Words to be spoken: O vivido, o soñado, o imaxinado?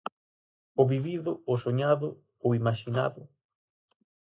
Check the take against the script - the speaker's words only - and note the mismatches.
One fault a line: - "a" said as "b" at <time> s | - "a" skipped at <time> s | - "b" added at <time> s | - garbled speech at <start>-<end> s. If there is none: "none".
none